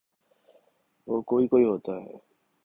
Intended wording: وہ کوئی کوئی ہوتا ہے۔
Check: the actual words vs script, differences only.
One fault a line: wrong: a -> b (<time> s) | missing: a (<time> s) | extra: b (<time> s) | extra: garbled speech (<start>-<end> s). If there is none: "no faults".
no faults